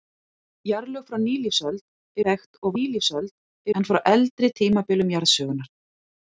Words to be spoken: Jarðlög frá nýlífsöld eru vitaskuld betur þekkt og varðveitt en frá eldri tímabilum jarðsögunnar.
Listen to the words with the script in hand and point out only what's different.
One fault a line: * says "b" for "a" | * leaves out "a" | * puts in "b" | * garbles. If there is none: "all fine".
* leaves out "eru vitaskuld betur"
* says "nýlífsöld" for "varðveitt"